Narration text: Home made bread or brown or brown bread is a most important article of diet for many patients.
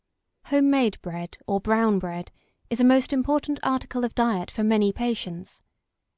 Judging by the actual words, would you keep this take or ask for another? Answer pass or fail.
fail